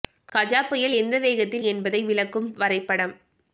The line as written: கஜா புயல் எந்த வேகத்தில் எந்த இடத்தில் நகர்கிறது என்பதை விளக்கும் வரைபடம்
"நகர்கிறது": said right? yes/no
no